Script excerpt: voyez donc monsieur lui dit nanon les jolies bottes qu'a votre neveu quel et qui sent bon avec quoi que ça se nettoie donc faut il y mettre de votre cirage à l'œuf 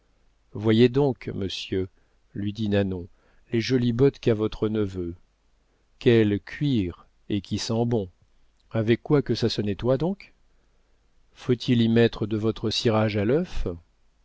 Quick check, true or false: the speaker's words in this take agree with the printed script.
false